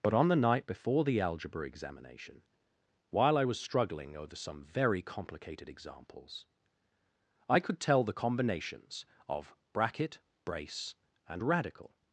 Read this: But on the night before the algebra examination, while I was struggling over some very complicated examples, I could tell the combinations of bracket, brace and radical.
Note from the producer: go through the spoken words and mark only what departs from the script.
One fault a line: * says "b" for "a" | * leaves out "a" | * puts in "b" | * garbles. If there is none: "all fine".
all fine